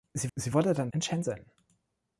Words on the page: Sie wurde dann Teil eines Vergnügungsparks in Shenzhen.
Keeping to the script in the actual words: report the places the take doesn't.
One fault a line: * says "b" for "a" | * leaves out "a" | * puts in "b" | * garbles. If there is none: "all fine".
* puts in "sie"
* leaves out "Teil eines Vergnügungsparks"